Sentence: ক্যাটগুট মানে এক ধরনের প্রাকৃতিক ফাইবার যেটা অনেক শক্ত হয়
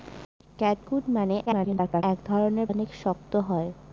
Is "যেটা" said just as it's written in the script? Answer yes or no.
no